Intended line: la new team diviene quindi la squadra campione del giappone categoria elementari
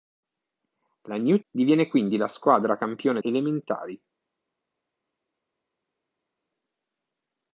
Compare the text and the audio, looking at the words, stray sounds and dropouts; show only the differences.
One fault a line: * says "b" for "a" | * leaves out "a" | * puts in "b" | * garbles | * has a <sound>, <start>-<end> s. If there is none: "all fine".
* leaves out "team"
* leaves out "del giappone categoria"